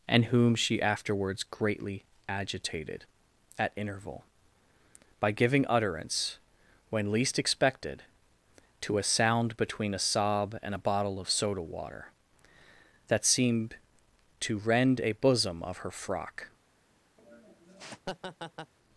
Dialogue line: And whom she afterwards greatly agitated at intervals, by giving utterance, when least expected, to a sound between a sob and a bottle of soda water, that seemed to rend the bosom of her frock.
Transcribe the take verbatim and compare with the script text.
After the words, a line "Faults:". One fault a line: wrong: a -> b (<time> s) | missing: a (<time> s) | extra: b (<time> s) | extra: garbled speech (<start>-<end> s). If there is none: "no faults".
And whom she afterwards greatly agitated at interval, by giving utterance, when least expected, to a sound between a sob and a bottle of soda water, that seemed to rend a bosom of her frock.
Faults:
wrong: intervals -> interval (3.8 s)
wrong: the -> a (15.0 s)